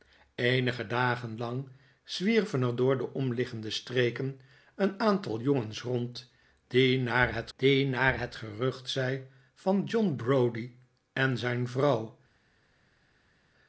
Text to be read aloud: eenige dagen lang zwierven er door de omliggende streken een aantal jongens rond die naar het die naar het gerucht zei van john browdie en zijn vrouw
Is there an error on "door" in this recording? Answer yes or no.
no